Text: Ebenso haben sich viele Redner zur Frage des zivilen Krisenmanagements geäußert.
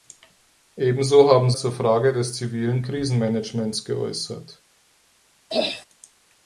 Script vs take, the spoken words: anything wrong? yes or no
yes